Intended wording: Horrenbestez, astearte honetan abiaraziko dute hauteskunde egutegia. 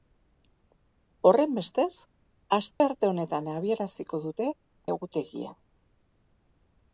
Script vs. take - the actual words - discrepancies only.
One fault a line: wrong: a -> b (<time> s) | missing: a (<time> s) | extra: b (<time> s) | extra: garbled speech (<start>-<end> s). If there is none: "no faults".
missing: hauteskunde (4.5 s)